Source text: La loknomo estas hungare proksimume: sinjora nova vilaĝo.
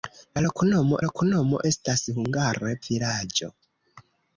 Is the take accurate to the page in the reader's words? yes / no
no